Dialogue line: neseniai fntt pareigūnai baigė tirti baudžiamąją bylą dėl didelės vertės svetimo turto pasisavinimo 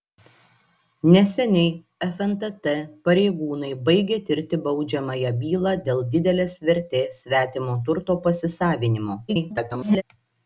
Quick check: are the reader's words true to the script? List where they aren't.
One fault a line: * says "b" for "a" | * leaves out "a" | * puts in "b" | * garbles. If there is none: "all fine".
* garbles